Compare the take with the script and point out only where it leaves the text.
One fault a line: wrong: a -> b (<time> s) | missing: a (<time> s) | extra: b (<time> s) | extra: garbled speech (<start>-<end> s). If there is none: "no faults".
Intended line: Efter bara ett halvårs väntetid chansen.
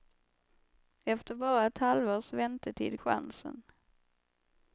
no faults